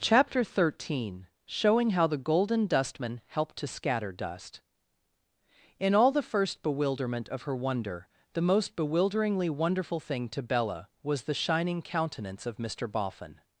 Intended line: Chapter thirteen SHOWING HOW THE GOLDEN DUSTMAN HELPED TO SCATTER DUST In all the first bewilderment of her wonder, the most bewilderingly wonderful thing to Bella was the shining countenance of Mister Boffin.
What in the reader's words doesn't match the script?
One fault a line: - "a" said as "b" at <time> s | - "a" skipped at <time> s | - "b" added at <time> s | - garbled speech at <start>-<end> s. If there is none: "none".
none